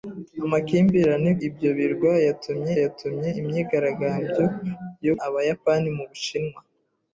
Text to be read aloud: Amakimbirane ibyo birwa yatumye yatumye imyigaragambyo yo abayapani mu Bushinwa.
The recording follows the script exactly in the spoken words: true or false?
true